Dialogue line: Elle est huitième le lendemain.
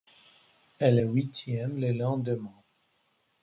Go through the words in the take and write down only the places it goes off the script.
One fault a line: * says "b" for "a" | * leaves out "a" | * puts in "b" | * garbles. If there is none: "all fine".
all fine